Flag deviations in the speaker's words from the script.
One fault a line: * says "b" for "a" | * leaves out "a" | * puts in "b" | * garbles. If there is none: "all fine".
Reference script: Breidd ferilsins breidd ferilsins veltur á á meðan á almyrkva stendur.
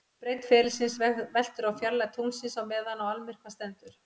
* says "veltur á fjarlægð tunglsins" for "breidd ferilsins veltur á"